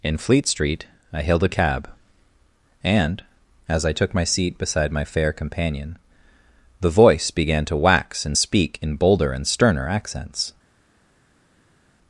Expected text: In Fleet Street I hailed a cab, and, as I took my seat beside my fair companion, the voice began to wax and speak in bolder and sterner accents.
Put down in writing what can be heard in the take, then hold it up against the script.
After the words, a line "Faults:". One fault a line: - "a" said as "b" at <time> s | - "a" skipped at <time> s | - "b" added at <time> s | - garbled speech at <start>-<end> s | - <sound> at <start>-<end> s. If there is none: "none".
In Fleet Street I hailed a cab, and, as I took my seat beside my fair companion, the voice began to wax and speak in bolder and sterner accents.
Faults:
none